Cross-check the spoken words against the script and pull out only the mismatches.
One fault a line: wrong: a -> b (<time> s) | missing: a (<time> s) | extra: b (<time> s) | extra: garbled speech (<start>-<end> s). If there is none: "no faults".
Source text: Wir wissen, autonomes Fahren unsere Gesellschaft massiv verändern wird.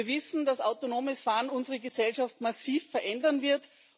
extra: dass (0.5 s)